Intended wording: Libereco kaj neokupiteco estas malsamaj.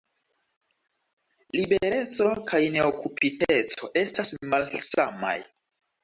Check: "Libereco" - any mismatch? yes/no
no